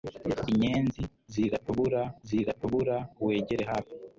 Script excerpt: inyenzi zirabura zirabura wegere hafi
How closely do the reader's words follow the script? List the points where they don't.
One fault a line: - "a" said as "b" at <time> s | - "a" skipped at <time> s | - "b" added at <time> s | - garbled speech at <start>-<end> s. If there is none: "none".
none